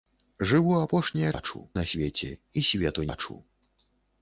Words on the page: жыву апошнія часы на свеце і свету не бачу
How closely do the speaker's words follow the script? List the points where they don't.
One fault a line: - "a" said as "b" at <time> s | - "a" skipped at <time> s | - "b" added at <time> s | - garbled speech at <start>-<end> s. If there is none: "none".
- "часы" said as "бачу" at 1.3 s
- "не" skipped at 3.1 s